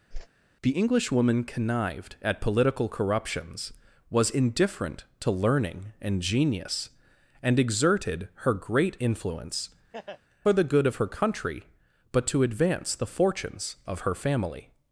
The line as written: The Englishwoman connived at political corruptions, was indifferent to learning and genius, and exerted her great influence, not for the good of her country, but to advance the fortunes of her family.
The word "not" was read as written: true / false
false